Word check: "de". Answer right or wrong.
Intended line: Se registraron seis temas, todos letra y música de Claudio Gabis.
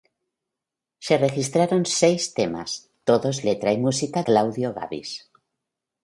wrong